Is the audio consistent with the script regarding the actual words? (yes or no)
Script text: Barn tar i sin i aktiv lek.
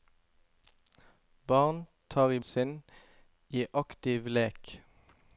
yes